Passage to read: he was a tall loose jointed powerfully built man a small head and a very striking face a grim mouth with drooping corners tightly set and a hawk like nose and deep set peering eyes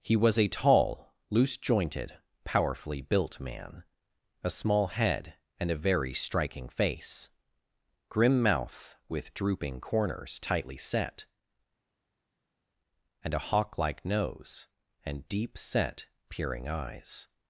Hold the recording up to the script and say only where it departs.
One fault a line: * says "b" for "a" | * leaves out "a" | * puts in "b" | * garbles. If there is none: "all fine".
* leaves out "a"